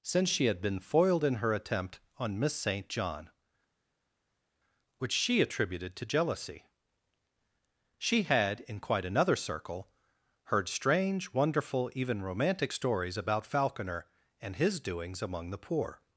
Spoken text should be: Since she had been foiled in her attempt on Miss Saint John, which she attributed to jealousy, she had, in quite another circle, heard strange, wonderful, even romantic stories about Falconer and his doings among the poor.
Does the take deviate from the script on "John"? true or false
false